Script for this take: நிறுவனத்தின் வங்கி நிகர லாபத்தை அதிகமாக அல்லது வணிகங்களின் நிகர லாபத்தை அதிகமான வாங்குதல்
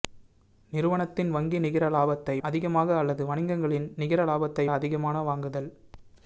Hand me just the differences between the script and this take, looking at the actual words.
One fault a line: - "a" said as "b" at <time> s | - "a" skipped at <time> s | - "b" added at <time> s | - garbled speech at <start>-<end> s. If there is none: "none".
none